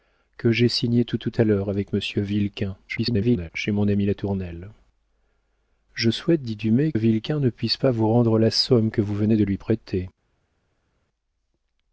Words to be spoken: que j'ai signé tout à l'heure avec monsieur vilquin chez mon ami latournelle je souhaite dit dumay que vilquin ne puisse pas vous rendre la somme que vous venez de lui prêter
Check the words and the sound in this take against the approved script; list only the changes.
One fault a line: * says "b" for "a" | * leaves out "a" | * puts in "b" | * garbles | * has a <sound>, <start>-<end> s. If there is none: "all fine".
* puts in "tout"
* garbles
* leaves out "que"